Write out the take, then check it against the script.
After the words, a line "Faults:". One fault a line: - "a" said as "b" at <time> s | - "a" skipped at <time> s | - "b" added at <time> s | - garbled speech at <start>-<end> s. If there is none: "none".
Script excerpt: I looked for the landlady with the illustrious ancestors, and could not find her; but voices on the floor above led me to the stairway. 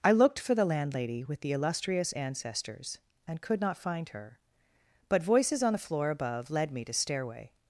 I looked for the landlady with the illustrious ancestors, and could not find her; but voices on the floor above led me to stairway.
Faults:
- "the" skipped at 6.9 s